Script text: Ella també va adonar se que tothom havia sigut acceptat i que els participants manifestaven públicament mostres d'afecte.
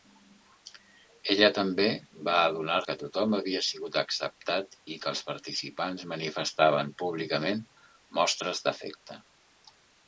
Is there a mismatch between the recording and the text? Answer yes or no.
yes